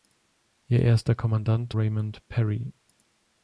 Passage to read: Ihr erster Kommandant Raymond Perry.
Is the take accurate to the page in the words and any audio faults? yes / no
yes